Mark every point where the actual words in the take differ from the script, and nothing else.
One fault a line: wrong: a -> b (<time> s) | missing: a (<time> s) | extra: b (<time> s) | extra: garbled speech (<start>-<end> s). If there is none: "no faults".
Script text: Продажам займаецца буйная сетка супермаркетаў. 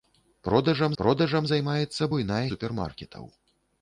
extra: продажам (1.0 s)
missing: сетка (2.4 s)